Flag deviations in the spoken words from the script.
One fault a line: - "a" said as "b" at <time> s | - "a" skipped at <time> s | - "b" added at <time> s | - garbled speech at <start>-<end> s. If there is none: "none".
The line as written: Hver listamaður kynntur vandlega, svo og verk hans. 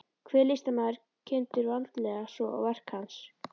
none